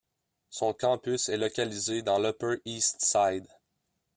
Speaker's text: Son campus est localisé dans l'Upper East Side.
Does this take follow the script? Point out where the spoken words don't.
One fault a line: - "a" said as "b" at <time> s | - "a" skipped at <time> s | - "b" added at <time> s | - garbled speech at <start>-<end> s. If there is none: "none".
none